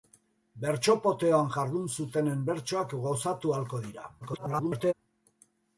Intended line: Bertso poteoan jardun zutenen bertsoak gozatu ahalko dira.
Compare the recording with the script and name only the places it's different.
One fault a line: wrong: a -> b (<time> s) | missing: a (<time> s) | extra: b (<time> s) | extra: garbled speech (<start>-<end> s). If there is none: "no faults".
extra: garbled speech (4.2-4.9 s)